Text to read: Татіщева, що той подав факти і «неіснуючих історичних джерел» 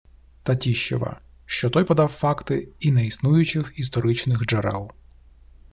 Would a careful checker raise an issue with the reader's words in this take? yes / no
no